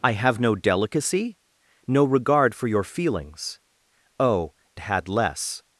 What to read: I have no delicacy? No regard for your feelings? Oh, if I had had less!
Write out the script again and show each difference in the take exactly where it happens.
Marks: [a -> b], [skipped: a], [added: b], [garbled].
I have no delicacy? No regard for your feelings? Oh, [skipped: if I had] had less!